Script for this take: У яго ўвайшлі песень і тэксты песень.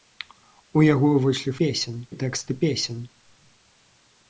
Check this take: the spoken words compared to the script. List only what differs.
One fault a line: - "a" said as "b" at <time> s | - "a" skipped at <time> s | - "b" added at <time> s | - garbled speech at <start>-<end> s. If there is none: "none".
none